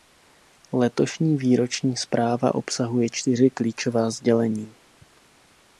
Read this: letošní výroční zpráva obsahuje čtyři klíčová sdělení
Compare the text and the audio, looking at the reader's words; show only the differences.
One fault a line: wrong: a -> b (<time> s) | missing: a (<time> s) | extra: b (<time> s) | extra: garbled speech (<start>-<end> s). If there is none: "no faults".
no faults